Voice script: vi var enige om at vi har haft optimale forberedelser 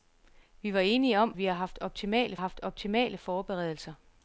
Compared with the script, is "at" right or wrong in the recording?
wrong